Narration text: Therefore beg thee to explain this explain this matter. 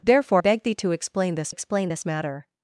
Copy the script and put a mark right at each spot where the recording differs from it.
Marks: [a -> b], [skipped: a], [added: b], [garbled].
Therefore beg thee to explain this explain this matter.